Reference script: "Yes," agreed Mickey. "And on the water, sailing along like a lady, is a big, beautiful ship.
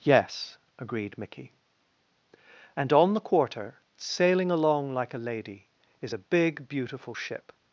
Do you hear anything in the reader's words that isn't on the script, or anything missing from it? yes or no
yes